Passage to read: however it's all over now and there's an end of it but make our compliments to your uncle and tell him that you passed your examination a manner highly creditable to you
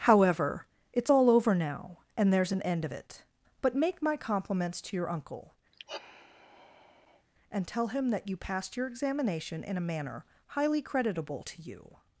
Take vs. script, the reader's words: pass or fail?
fail